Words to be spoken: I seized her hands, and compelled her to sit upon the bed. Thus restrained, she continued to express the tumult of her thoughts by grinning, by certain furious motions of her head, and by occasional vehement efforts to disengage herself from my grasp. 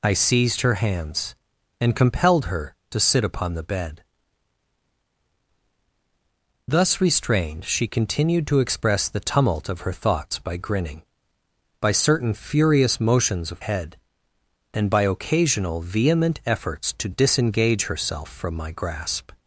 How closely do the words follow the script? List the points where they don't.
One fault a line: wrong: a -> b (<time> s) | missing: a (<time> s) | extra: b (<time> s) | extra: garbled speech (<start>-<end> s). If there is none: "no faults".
missing: her (13.6 s)